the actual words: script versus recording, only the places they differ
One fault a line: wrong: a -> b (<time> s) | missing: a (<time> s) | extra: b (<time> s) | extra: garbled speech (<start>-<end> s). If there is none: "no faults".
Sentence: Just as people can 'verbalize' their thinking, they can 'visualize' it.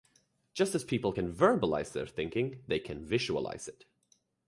no faults